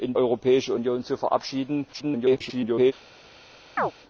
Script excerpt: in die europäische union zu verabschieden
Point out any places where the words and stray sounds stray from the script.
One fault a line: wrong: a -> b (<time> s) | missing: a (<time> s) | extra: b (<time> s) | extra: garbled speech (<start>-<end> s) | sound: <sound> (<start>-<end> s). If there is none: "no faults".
missing: die (0.1 s)
extra: garbled speech (1.9-2.9 s)
sound: chirp (3.8-3.9 s)